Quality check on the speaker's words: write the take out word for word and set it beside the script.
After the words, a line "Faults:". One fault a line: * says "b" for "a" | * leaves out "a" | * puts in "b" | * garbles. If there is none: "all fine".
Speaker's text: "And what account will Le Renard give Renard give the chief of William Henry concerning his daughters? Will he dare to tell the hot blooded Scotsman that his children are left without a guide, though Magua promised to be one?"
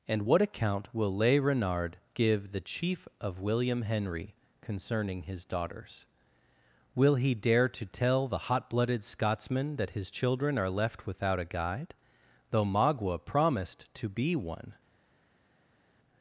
"And what account will Le Renard give the chief of William Henry concerning his daughters? Will he dare to tell the hot blooded Scotsman that his children are left without a guide, though Magua promised to be one?"
Faults:
* leaves out "Renard give"